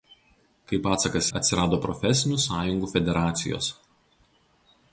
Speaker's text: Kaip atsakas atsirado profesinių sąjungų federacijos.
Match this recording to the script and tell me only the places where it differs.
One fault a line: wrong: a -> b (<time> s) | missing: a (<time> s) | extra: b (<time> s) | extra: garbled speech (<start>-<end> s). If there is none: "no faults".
no faults